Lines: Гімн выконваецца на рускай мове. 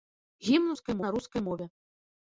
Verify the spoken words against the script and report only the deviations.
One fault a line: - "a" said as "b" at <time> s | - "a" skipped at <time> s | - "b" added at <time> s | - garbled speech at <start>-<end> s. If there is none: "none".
- "выконваецца" said as "рускай" at 0.7 s